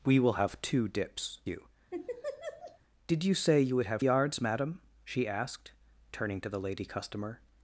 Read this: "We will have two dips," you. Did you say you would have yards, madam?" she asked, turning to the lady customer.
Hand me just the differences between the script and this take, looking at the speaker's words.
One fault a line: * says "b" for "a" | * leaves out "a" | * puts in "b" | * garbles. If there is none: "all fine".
all fine